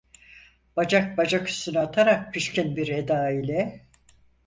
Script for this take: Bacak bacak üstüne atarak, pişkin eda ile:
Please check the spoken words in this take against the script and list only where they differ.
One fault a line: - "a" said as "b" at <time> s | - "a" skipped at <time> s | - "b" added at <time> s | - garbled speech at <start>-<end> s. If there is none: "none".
- "bir" added at 2.8 s